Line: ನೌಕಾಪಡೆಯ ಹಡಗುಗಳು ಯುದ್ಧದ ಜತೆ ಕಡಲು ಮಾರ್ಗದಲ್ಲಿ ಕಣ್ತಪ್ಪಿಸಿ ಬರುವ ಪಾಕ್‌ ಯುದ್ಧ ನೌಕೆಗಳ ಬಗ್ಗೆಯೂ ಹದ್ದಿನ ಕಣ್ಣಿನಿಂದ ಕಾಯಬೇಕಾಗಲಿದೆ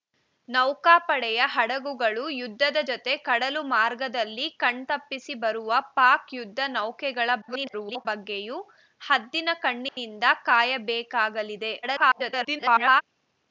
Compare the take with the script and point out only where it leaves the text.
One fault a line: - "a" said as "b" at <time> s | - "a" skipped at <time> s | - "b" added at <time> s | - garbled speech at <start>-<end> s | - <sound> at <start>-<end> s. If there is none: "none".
- garbled speech at 7.4-8.1 s
- dropout at 9.9-10.0 s
- garbled speech at 11.8-13.0 s